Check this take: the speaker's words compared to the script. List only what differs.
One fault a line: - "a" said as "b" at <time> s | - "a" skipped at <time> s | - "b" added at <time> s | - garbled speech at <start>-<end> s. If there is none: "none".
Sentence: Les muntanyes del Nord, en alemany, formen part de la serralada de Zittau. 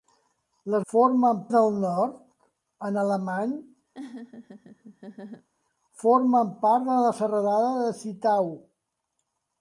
- "muntanyes" said as "formen" at 0.9 s